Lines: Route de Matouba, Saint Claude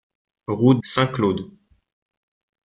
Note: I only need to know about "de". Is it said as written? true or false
false